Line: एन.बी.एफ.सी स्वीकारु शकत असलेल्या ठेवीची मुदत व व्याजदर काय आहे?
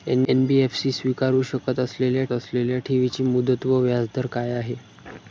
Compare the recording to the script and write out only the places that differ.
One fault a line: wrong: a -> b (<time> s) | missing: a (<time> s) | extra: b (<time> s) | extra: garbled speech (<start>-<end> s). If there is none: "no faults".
extra: असलेल्या (2.3 s)